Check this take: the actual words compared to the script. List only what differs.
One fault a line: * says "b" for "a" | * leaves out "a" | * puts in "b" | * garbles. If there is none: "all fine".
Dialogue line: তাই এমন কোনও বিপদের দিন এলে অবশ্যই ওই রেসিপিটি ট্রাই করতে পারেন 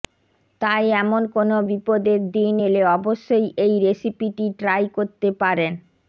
* says "এই" for "ওই"